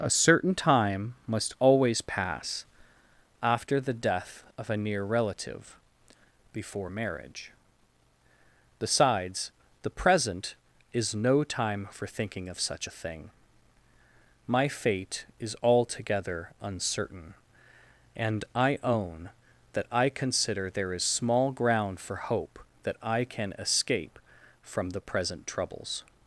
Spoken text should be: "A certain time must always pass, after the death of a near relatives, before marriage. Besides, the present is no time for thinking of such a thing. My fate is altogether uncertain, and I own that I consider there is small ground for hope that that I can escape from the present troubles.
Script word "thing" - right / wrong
right